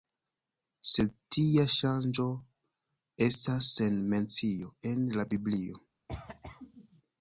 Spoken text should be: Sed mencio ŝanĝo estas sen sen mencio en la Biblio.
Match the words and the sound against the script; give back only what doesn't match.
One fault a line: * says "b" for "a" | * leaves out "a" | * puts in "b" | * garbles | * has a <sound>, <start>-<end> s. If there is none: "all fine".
* says "tia" for "mencio"
* leaves out "sen"
* has a cough, 6.1-7.0 s